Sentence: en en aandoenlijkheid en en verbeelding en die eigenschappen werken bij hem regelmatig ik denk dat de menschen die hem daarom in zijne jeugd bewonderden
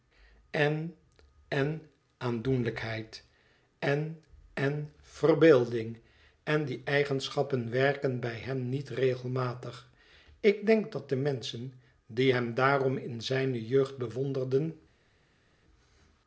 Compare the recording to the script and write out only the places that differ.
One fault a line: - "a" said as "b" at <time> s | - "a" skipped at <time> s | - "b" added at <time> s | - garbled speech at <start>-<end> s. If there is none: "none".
- "niet" added at 8.7 s